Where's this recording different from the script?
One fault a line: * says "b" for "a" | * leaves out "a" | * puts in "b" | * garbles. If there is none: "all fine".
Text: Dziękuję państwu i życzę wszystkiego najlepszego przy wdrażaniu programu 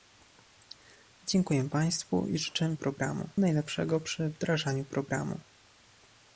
* says "programu" for "wszystkiego"